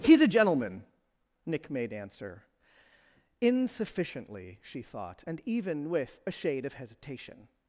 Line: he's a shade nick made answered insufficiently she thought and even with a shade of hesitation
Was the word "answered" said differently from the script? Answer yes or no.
yes